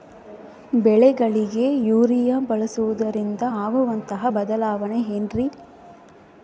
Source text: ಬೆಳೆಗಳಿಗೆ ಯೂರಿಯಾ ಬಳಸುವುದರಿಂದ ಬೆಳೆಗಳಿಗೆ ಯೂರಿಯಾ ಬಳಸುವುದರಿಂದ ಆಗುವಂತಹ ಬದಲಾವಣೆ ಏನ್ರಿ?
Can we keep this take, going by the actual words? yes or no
no